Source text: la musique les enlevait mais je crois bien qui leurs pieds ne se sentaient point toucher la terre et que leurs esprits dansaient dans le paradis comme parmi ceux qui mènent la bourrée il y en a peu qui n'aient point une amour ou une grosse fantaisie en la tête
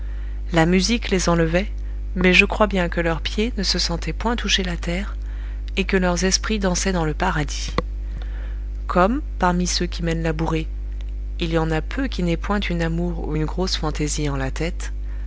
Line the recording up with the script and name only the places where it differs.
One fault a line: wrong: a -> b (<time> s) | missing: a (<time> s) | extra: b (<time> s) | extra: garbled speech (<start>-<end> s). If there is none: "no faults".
wrong: qui -> que (2.9 s)